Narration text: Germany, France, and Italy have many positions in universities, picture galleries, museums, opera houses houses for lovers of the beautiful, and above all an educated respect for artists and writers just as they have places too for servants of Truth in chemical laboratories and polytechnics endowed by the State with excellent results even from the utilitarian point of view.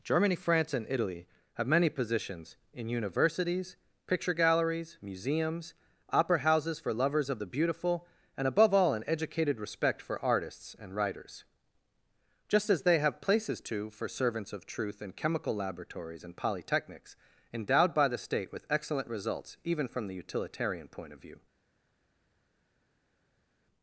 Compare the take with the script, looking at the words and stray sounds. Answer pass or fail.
fail